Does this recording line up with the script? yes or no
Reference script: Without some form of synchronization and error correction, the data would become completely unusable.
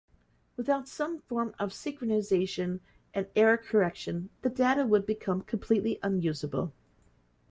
yes